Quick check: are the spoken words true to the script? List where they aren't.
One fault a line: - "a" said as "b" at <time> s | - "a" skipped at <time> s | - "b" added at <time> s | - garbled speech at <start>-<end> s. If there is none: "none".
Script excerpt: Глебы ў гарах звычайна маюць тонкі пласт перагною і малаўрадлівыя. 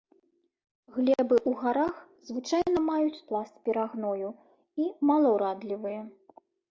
- "тонкі" skipped at 3.2 s